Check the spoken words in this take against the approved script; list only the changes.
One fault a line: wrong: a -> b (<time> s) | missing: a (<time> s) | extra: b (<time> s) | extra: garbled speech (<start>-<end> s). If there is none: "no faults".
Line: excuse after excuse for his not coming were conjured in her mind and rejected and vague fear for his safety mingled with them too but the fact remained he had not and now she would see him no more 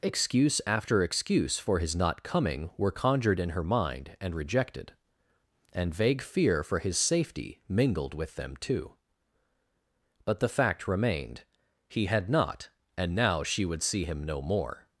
no faults